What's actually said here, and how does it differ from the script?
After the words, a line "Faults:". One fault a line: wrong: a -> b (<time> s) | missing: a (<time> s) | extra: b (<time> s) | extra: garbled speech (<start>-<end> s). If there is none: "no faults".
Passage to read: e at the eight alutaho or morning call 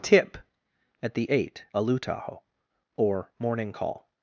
tip at the eight alutaho or morning call
Faults:
wrong: e -> tip (0.0 s)